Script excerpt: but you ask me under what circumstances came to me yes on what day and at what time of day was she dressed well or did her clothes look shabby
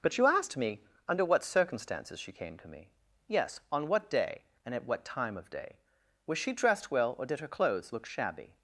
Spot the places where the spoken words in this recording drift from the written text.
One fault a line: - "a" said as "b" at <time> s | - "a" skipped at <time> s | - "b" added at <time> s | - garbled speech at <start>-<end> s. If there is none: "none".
- "ask" said as "asked" at 0.2 s
- "she" added at 2.2 s